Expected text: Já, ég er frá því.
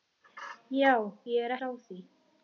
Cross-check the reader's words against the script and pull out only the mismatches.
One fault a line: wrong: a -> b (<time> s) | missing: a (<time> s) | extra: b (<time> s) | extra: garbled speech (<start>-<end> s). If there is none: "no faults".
no faults